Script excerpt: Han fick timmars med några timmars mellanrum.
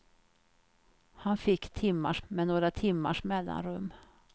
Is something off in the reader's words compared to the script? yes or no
no